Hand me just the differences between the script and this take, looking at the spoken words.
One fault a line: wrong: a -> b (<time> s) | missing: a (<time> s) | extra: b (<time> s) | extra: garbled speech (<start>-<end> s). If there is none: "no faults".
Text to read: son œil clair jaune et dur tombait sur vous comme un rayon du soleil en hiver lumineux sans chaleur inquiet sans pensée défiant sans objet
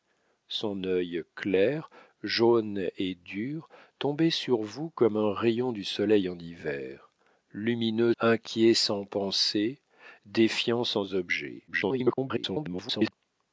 missing: sans chaleur (8.2 s)
extra: garbled speech (11.7-13.1 s)